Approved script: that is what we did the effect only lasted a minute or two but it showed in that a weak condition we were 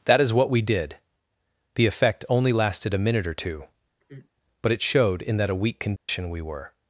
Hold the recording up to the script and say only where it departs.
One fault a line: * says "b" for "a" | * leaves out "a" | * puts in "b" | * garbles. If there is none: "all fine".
all fine